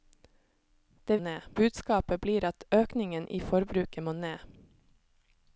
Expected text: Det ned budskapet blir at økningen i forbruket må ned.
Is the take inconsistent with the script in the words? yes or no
no